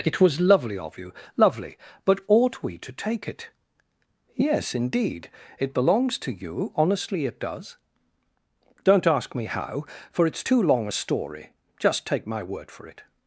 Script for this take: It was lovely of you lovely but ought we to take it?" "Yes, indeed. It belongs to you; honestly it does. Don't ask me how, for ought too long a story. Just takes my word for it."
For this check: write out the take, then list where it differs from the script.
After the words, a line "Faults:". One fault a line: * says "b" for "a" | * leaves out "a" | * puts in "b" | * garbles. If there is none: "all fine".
It was lovely of you lovely but ought we to take it?" "Yes, indeed. It belongs to you; honestly it does. Don't ask me how, for it's too long a story. Just take my word for it."
Faults:
* says "it's" for "ought"
* says "take" for "takes"